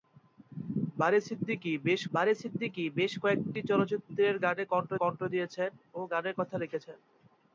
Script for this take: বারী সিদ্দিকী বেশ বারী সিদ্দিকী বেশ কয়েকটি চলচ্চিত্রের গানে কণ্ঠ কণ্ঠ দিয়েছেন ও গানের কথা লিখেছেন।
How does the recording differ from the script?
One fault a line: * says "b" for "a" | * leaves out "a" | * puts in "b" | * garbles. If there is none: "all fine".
all fine